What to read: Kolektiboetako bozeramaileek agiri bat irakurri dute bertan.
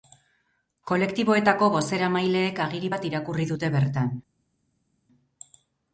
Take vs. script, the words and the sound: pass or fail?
pass